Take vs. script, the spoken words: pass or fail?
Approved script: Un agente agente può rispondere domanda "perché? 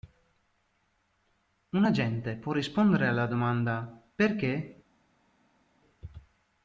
fail